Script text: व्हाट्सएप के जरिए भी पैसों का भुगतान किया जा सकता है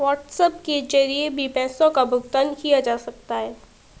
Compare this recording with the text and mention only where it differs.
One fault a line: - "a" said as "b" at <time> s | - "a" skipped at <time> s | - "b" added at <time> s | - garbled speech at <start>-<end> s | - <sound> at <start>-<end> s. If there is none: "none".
none